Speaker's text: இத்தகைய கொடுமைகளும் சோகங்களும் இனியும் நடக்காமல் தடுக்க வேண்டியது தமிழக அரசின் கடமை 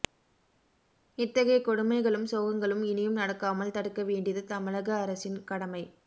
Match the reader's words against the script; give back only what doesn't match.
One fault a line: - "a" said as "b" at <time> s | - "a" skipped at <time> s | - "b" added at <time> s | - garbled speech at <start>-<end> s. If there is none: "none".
none